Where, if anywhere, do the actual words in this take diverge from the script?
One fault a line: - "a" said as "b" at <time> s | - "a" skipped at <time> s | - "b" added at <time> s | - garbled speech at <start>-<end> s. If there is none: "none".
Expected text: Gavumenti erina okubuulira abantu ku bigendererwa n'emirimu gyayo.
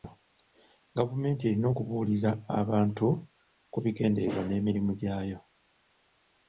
none